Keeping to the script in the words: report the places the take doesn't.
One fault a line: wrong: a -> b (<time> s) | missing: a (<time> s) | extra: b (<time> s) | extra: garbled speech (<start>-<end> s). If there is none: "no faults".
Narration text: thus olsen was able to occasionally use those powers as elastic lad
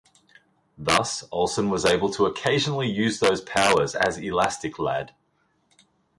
no faults